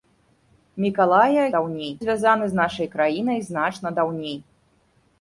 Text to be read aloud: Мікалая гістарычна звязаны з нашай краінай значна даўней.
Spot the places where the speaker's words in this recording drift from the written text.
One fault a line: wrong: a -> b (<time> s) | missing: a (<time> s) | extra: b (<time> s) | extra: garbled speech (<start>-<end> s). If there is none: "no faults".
wrong: гістарычна -> даўней (1.5 s)